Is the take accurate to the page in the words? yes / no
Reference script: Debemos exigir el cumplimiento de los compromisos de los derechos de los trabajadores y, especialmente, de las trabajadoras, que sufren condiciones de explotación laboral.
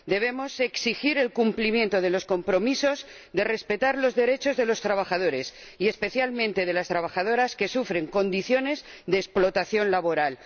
no